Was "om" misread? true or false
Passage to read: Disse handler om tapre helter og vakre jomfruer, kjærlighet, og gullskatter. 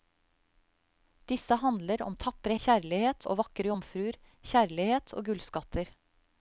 false